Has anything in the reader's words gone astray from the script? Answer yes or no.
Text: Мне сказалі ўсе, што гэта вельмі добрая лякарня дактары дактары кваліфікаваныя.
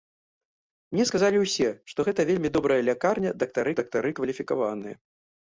no